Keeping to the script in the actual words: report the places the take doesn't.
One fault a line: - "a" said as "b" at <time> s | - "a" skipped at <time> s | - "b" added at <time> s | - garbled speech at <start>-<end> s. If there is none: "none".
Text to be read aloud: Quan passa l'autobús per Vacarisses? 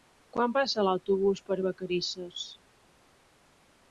none